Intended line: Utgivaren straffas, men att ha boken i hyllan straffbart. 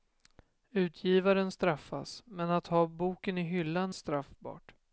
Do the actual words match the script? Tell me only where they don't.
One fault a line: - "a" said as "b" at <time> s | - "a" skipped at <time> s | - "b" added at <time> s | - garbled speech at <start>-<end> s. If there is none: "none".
none